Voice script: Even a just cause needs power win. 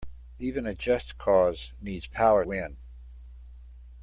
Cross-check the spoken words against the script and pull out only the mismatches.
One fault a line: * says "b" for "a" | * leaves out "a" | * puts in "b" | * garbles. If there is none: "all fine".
all fine